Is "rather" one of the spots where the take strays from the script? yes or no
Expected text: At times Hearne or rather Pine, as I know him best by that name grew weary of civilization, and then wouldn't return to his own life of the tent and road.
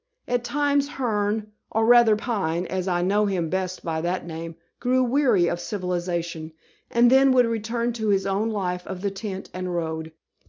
no